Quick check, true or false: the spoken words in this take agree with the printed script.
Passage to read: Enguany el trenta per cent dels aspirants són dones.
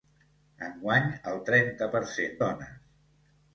false